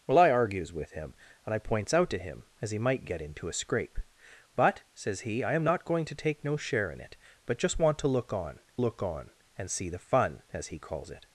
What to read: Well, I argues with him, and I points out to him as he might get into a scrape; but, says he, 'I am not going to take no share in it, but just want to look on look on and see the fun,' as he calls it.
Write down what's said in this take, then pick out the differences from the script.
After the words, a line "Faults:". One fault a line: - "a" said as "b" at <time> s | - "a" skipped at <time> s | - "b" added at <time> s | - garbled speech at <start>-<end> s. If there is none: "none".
Well, I argues with him, and I points out to him as he might get into a scrape; but, says he, 'I am not going to take no share in it, but just want to look on look on and see the fun,' as he calls it.
Faults:
none